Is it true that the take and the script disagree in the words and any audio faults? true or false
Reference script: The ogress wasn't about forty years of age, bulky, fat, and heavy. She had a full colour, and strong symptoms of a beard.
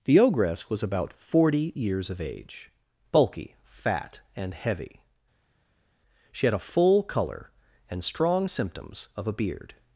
true